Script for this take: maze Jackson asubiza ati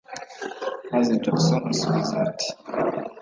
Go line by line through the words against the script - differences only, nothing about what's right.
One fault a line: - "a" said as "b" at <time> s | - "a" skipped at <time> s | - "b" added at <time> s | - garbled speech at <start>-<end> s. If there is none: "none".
none